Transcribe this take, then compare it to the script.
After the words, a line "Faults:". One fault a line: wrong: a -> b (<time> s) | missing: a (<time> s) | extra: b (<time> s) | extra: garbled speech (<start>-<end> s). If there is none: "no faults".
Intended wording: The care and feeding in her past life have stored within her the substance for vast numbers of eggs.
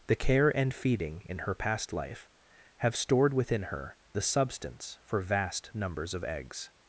The care and feeding in her past life have stored within her the substance for vast numbers of eggs.
Faults:
no faults